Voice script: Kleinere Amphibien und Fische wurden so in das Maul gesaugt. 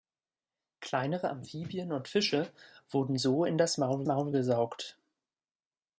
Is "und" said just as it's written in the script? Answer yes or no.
yes